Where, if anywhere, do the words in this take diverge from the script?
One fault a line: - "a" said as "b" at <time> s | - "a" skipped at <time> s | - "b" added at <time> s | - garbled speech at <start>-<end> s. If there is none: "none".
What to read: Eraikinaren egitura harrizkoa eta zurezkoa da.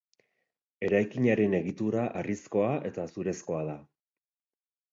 none